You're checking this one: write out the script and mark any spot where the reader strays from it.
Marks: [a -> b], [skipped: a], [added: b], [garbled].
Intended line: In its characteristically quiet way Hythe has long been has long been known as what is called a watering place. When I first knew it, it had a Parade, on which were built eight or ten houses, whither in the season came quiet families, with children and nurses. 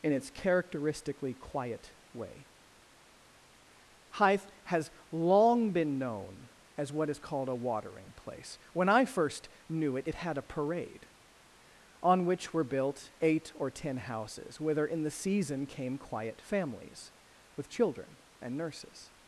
In its characteristically quiet way Hythe has long been [skipped: has long been] known as what is called a watering place. When I first knew it, it had a Parade, on which were built eight or ten houses, whither in the season came quiet families, with children and nurses.